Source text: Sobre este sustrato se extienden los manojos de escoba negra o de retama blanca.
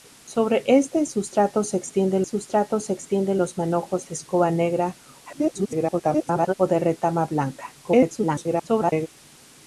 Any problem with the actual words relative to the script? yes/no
yes